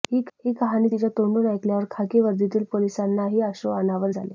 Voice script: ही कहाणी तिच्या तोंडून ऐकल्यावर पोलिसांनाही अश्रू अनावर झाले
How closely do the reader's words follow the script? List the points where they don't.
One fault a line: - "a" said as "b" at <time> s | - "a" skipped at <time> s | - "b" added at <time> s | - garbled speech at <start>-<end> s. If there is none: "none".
- "खाकी वर्दीतील" added at 1.9 s